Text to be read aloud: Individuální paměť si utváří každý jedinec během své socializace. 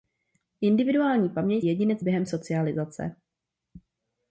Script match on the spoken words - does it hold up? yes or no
no